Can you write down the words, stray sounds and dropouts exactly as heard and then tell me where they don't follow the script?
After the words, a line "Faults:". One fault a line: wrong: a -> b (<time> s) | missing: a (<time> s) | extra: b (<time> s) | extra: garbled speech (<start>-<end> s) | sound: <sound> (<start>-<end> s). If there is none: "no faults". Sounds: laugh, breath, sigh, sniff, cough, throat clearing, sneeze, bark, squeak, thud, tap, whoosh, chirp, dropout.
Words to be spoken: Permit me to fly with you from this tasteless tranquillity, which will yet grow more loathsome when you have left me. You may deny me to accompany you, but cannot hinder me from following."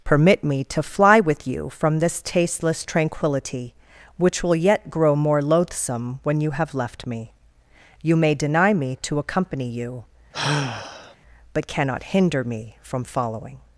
Permit me to fly with you from this tasteless tranquillity, which will yet grow more loathsome when you have left me. You may deny me to accompany you, but cannot hinder me from following."
Faults:
sound: sigh (10.3-11.2 s)